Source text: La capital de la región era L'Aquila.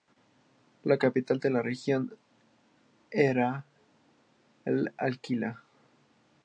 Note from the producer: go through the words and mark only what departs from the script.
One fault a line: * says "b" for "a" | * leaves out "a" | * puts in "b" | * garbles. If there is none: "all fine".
all fine